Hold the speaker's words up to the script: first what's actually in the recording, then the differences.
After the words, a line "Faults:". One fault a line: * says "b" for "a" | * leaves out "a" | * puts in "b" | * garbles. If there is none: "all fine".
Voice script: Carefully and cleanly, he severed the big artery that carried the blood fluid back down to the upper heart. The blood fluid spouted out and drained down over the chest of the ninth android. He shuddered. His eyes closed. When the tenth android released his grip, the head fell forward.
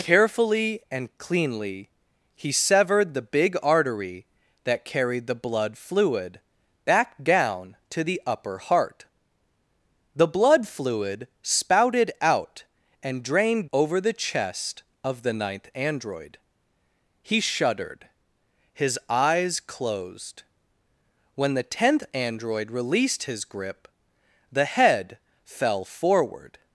Carefully and cleanly, he severed the big artery that carried the blood fluid back down to the upper heart. The blood fluid spouted out and drained over the chest of the ninth android. He shuddered. His eyes closed. When the tenth android released his grip, the head fell forward.
Faults:
* leaves out "down"